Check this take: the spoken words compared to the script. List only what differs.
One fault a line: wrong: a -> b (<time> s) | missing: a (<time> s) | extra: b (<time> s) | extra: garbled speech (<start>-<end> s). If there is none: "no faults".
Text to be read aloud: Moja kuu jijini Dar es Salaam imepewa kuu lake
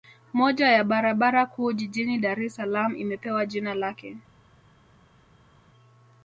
extra: ya barabara (0.7 s)
wrong: kuu -> jina (3.5 s)